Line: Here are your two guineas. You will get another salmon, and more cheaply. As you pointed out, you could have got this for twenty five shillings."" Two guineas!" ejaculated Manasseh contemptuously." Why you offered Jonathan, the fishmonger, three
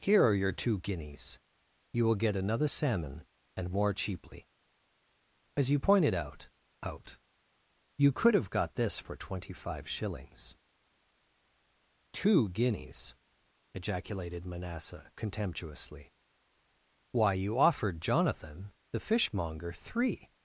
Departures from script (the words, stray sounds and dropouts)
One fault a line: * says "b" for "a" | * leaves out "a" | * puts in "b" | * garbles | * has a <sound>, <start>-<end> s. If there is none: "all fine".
* puts in "out"